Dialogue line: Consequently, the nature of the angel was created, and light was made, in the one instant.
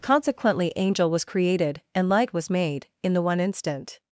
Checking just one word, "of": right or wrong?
wrong